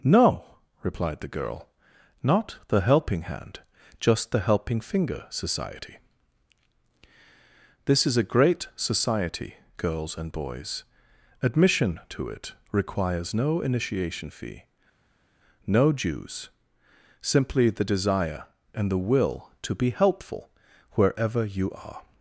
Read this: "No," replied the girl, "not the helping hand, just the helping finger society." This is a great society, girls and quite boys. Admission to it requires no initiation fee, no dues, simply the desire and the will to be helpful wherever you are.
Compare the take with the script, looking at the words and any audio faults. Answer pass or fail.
fail